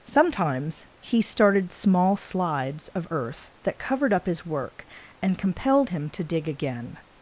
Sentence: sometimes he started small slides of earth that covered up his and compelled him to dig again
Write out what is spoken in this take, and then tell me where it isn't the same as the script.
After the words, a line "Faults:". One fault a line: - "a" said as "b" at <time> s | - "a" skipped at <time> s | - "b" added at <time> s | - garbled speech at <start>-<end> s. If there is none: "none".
sometimes he started small slides of earth that covered up his work and compelled him to dig again
Faults:
- "work" added at 4.5 s